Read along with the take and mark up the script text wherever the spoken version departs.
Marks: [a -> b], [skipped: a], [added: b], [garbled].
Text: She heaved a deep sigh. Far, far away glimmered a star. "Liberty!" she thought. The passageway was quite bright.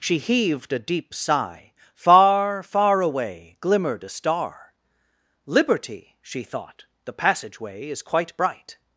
She heaved a deep sigh. Far, far away glimmered a star. "Liberty!" she thought. The passageway [was -> is] quite bright.